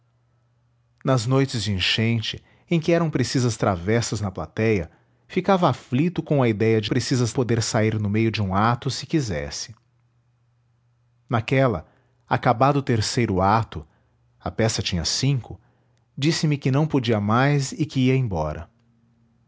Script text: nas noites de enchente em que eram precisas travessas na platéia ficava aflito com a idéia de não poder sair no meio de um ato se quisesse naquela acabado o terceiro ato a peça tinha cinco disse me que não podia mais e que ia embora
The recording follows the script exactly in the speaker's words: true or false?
false